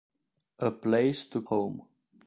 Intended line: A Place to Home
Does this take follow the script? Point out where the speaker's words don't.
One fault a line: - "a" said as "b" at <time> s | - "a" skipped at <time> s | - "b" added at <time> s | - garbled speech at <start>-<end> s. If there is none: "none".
none